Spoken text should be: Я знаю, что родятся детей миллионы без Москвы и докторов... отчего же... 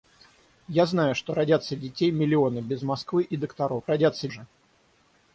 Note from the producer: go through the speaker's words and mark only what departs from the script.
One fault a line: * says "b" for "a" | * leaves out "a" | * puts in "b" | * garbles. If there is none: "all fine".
* says "родятся" for "отчего"